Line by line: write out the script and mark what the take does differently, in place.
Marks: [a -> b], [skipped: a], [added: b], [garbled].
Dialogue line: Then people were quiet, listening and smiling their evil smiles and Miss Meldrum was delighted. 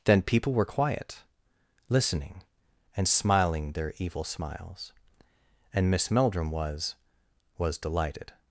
Then people were quiet, listening and smiling their evil smiles and Miss Meldrum was [added: was] delighted.